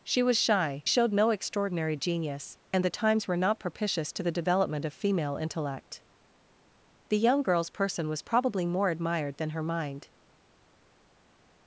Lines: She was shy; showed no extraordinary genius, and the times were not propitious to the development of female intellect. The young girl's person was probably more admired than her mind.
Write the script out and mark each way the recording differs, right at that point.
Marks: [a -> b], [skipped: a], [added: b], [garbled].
She was shy; showed no extraordinary genius, and the times were not propitious to the development of female intellect. The young girl's person was probably more admired than her mind.